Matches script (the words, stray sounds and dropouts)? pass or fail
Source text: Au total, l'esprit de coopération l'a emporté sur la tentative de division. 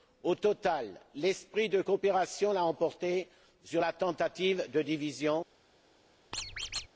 fail